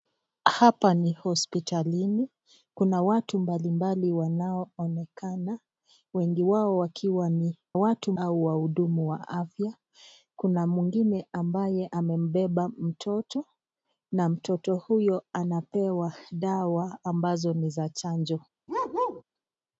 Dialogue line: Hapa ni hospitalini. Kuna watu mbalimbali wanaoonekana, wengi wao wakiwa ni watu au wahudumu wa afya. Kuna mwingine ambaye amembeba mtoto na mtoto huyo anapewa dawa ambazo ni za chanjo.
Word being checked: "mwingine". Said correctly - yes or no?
yes